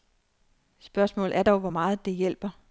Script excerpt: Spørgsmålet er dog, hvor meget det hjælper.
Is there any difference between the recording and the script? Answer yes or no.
no